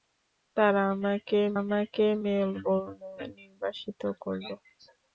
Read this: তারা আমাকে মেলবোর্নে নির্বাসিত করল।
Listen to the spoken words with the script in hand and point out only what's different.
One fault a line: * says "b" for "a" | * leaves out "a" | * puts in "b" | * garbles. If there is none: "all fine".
* puts in "আমাকে"